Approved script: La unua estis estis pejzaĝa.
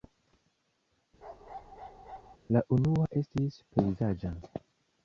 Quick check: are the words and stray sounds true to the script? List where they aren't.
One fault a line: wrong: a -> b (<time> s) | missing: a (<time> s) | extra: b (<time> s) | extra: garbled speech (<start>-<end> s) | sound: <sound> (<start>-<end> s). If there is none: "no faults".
sound: bark (1.2-2.4 s)
missing: estis (3.6 s)